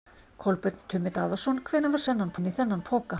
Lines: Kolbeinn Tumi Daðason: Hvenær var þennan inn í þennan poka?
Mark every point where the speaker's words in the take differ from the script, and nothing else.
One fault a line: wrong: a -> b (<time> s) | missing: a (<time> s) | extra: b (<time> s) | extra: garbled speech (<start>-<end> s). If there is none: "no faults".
no faults